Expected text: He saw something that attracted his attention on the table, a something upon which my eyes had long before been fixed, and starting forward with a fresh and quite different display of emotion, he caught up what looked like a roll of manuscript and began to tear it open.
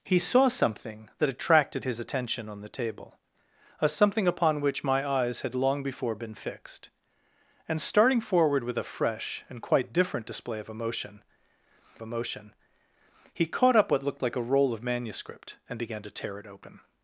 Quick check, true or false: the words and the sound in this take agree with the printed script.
false